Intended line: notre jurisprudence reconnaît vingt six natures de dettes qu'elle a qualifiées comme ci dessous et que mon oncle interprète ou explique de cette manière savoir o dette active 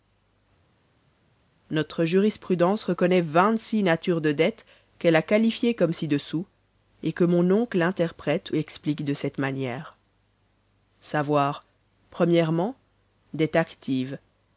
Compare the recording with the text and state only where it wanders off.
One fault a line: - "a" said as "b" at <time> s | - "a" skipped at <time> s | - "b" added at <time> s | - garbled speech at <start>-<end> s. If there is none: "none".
- "ou" skipped at 8.5 s